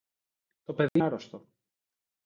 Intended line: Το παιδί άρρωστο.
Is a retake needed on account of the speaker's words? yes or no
no